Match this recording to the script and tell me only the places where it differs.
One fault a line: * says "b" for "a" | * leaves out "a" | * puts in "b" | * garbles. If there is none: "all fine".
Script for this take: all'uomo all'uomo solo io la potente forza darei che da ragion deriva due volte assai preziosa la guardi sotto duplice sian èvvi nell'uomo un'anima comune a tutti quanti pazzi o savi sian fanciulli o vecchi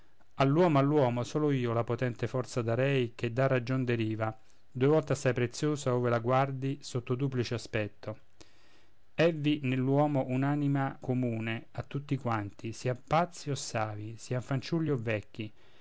* puts in "ove"
* says "aspetto" for "sian"
* puts in "sian"